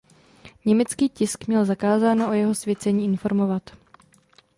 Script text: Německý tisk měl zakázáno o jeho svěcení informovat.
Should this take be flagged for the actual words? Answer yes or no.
no